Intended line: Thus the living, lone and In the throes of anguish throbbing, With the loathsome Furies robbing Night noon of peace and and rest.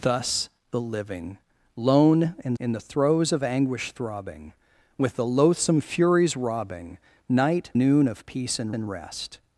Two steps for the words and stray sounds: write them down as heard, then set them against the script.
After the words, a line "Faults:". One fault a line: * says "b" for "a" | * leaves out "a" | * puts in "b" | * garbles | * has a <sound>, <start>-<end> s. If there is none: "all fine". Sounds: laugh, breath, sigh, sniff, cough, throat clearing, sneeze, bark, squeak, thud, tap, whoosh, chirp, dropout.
Thus the living, lone and In the throes of anguish throbbing, With the loathsome Furies robbing Night noon of peace and and rest.
Faults:
all fine